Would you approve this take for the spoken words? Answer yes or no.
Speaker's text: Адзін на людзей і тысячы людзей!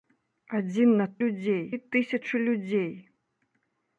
yes